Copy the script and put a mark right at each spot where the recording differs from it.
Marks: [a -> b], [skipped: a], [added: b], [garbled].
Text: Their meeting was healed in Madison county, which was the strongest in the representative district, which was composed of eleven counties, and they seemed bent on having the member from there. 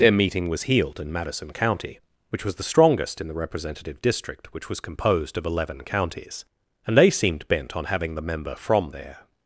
Their meeting was healed in Madison county, which was the strongest in the representative district, which was composed of eleven counties, and they seemed bent on having the member from there.